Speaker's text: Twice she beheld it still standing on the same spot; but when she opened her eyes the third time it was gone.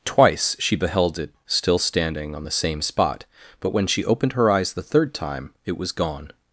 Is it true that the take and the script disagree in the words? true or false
false